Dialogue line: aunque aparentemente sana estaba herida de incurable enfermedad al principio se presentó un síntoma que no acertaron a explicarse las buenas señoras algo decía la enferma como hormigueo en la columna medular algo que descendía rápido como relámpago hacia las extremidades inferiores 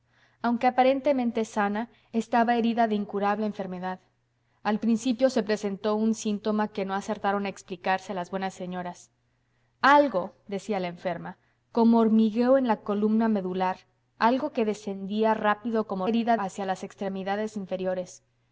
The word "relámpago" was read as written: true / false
false